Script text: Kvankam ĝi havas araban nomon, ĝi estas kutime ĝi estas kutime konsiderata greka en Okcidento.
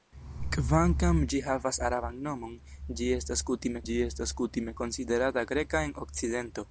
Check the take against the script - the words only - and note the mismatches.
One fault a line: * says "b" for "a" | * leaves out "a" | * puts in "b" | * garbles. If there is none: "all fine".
all fine